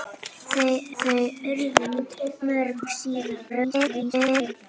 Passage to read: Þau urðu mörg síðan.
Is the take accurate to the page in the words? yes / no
no